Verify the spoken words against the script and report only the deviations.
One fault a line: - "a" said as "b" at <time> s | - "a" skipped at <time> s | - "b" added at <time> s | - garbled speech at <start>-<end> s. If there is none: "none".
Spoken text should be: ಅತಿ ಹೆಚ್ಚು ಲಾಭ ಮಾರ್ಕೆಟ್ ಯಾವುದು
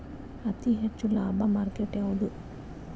none